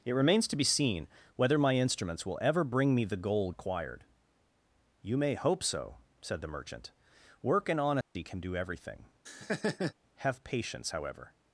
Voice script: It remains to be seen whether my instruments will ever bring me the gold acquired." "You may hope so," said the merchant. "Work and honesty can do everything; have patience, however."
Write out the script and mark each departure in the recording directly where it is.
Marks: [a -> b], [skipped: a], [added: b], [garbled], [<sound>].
It remains to be seen whether my instruments will ever bring me the gold acquired." "You may hope so," said the merchant. "Work and honesty [dropout] can do everything; [laugh] have patience, however."